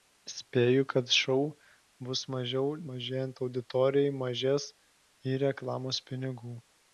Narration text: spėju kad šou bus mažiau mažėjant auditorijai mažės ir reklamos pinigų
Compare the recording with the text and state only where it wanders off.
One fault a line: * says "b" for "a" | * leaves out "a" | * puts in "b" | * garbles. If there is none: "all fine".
all fine